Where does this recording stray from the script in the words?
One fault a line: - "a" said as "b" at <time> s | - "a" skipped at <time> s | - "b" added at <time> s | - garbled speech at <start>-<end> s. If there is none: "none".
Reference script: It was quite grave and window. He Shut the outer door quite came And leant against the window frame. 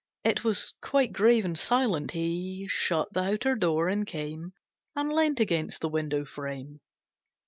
- "window" said as "silent" at 1.6 s
- "quite" said as "and" at 3.9 s